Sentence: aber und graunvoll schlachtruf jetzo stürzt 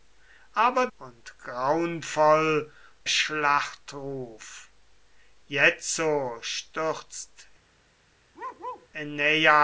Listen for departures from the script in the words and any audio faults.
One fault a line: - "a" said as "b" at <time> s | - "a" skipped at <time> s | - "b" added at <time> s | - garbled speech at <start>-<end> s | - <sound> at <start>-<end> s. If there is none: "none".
- bark at 8.3-8.9 s